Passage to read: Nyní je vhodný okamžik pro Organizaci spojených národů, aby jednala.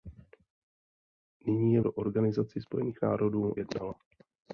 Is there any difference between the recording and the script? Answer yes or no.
yes